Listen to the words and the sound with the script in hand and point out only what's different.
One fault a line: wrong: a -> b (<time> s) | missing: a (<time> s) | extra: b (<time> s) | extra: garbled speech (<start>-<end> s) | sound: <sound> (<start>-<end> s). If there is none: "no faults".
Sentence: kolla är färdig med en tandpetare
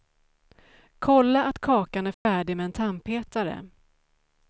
extra: att kakan (1.4 s)
sound: dropout (2.1-2.3 s)